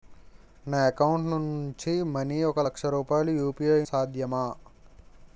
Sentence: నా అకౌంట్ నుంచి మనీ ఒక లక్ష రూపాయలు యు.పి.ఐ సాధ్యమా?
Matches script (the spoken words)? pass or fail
pass